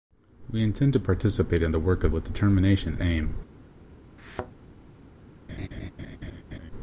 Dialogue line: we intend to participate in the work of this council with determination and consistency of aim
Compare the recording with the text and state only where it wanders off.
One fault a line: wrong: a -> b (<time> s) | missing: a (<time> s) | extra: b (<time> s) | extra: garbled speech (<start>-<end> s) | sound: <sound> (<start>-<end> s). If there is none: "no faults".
missing: this council (2.1 s)
missing: and consistency of (3.0 s)
sound: thud (4.2-4.5 s)
sound: laugh (5.5-6.7 s)